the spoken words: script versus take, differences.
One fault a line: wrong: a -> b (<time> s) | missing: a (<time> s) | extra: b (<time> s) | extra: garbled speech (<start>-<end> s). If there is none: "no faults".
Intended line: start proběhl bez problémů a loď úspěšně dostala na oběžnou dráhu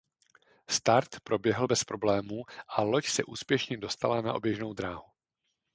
extra: se (3.1 s)